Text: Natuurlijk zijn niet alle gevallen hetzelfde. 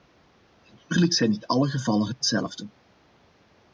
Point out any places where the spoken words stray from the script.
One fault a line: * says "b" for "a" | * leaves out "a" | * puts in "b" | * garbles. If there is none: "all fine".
all fine